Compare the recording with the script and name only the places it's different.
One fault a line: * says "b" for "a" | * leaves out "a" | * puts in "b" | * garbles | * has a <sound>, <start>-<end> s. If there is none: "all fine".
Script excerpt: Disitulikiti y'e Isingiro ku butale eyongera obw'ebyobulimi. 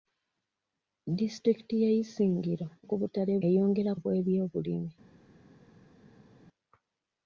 all fine